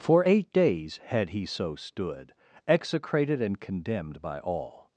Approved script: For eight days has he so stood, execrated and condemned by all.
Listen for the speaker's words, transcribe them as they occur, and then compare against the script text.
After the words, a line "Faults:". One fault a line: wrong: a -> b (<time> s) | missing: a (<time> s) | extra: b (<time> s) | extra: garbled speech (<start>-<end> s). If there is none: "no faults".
For eight days had he so stood, execrated and condemned by all.
Faults:
wrong: has -> had (1.1 s)